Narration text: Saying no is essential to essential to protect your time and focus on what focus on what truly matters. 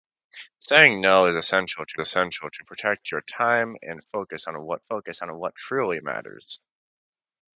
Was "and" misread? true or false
false